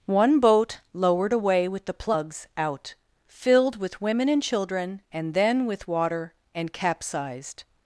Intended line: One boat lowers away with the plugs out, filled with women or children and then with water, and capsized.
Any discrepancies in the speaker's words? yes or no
yes